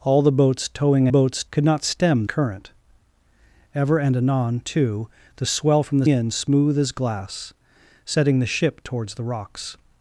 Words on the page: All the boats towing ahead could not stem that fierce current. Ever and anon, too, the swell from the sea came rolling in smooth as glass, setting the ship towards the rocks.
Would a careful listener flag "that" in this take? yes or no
yes